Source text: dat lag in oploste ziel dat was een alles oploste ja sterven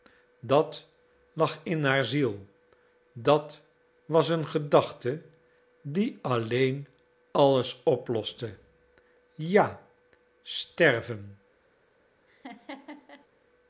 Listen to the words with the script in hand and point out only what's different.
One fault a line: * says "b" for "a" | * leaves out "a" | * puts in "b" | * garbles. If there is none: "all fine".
* says "haar" for "oploste"
* puts in "gedachte die alleen"